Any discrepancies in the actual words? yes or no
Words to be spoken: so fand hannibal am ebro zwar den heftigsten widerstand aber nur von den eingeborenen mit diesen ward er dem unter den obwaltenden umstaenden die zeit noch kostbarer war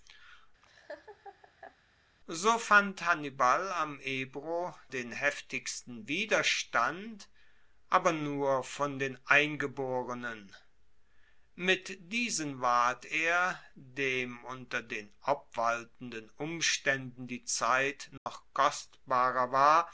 yes